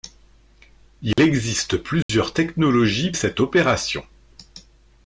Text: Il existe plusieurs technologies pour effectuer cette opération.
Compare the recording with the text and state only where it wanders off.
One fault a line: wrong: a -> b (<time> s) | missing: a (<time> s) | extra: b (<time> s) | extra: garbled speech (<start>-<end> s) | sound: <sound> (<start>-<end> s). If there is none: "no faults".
sound: dropout (1.1-1.2 s)
sound: dropout (2.0-2.1 s)
missing: pour effectuer (3.1 s)